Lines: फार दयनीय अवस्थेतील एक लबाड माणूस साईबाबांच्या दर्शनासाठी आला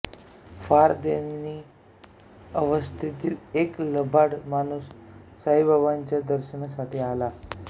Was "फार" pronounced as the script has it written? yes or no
yes